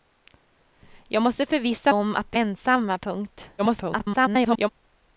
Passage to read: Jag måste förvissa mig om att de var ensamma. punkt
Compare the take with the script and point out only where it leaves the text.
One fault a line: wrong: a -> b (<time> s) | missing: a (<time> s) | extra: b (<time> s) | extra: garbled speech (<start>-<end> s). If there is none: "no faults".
missing: mig (1.9 s)
missing: var (2.4 s)
extra: garbled speech (3.6-4.7 s)